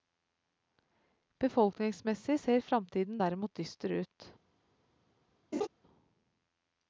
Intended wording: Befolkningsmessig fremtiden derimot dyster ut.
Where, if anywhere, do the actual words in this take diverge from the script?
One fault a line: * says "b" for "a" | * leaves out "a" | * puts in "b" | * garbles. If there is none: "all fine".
* puts in "ser"